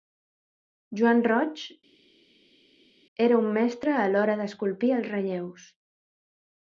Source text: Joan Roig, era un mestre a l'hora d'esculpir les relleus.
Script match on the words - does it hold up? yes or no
no